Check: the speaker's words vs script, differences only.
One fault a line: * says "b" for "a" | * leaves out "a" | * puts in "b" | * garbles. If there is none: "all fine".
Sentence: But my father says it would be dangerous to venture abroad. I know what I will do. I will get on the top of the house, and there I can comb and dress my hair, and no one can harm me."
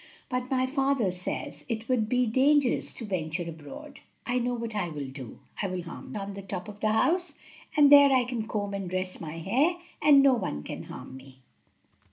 * says "harm" for "get"